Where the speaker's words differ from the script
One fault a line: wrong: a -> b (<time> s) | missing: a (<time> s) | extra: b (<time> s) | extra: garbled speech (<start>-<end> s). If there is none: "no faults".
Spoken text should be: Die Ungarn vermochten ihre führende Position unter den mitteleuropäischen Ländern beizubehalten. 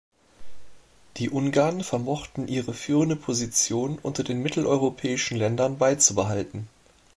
no faults